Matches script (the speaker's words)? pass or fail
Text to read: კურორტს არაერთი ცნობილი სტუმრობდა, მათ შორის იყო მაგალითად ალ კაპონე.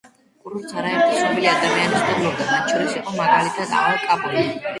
fail